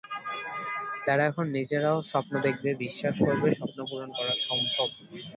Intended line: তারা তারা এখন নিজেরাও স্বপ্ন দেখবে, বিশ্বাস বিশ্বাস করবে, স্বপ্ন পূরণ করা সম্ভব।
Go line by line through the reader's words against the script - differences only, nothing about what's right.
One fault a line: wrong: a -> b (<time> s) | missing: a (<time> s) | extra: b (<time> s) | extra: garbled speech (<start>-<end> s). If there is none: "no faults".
missing: তারা (1.2 s)
missing: বিশ্বাস (3.1 s)